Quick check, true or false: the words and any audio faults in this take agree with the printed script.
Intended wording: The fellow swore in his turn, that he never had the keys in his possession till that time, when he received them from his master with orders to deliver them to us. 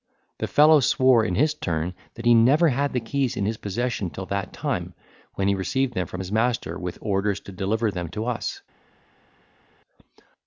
true